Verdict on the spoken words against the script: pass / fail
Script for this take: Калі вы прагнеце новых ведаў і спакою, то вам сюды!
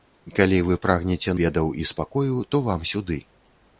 fail